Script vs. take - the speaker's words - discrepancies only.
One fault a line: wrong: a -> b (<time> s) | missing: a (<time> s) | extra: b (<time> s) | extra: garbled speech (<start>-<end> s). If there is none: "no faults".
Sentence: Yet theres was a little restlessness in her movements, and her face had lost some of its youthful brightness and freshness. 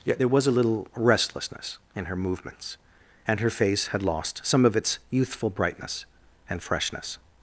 wrong: theres -> there (0.2 s)